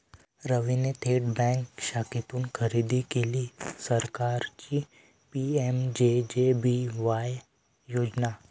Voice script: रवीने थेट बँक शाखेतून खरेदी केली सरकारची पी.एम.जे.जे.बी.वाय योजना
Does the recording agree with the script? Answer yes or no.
yes